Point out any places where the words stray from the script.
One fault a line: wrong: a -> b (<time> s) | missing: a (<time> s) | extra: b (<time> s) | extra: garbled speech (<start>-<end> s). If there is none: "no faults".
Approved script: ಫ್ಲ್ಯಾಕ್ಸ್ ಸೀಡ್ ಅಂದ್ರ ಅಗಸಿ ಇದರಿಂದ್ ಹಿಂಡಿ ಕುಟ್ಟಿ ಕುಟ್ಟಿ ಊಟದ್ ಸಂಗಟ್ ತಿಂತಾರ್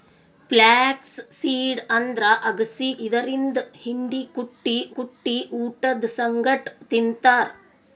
no faults